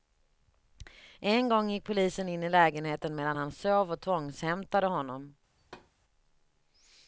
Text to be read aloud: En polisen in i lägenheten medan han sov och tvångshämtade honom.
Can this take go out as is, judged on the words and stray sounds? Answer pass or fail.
fail